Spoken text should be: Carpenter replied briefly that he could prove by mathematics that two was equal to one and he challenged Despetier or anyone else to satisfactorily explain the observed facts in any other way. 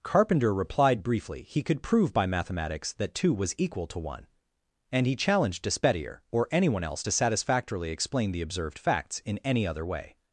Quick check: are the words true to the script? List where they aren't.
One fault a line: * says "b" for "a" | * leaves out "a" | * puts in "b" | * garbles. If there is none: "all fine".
* leaves out "that"